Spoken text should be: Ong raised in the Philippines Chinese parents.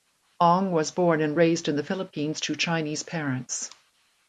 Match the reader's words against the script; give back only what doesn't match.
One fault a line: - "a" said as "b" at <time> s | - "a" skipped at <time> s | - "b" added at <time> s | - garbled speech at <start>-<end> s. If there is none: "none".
- "was born and" added at 0.7 s
- "to" added at 2.4 s